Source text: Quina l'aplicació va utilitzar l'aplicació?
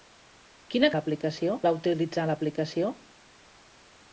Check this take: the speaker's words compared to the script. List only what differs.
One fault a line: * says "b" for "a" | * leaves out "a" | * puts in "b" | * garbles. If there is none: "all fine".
all fine